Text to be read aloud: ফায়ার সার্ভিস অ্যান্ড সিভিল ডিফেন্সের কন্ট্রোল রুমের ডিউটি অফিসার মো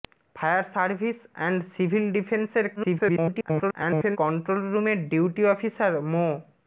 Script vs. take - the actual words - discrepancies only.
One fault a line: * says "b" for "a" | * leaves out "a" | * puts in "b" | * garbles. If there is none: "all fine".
* garbles